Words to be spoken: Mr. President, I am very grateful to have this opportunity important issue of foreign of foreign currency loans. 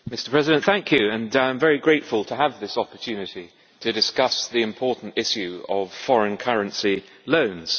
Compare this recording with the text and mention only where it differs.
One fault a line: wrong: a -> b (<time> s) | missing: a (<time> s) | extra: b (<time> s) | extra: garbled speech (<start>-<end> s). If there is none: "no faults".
extra: to discuss the (3.8 s)
missing: of foreign (6.4 s)